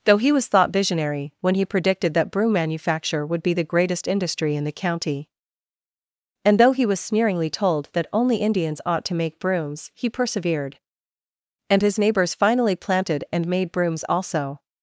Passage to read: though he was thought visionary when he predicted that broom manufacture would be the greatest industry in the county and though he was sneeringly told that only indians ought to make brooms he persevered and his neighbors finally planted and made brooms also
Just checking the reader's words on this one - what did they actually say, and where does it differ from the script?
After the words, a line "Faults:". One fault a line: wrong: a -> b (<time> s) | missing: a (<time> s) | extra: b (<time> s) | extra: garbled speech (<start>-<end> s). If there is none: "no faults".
though he was thought visionary when he predicted that broom manufacture would be the greatest industry in the county and though he was sneeringly told that only indians ought to make brooms he persevered and his neighbors finally planted and made brooms also
Faults:
no faults